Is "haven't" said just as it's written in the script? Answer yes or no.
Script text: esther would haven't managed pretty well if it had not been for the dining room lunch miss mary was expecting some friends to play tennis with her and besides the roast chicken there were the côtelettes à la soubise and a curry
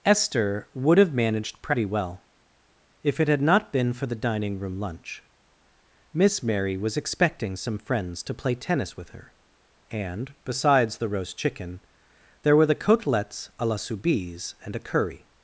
no